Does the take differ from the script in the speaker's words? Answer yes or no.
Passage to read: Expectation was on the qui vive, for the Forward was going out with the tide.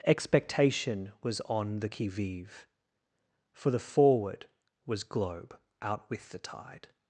yes